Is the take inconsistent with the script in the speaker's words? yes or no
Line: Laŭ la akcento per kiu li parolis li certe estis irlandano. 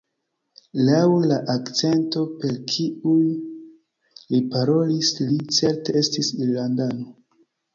no